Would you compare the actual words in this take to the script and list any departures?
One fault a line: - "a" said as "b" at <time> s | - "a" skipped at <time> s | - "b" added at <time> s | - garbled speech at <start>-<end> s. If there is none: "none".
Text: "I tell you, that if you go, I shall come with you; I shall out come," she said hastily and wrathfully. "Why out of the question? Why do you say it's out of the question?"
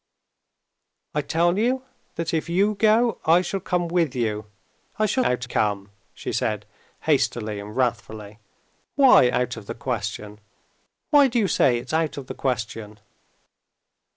none